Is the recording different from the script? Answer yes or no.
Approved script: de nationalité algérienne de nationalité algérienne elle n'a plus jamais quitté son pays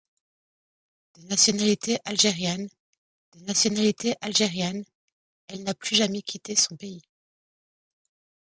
no